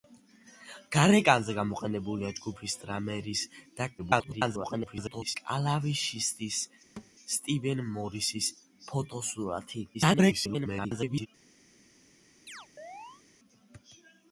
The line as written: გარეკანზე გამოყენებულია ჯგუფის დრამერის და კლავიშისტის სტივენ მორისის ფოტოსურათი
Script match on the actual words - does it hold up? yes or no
no